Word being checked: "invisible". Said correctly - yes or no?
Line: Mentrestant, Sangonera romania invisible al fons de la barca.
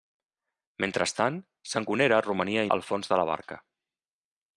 no